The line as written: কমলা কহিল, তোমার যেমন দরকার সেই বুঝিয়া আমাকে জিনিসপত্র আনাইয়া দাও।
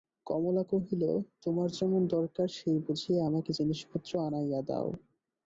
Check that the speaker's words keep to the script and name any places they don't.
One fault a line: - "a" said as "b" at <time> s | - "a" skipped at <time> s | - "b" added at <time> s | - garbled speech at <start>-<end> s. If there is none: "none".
none